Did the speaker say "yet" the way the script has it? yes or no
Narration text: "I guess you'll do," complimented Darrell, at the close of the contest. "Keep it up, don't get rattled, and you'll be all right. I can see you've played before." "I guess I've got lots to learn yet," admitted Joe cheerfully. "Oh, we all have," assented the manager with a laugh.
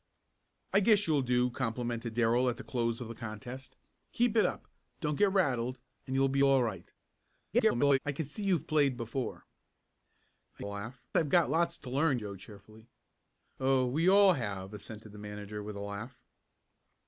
no